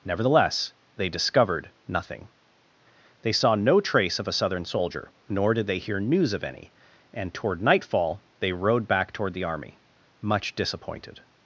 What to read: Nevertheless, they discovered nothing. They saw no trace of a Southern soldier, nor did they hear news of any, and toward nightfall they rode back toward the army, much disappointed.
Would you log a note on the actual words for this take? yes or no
no